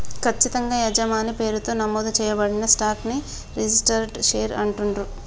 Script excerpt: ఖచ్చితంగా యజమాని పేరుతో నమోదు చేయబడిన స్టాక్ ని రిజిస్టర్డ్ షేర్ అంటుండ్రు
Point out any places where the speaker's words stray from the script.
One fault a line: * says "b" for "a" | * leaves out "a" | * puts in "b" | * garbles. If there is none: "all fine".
all fine